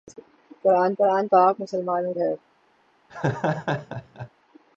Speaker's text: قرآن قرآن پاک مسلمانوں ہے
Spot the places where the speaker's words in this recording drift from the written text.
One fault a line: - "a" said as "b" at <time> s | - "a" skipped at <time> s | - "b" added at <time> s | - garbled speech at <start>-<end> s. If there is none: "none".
none